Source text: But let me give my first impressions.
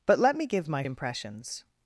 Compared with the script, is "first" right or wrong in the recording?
wrong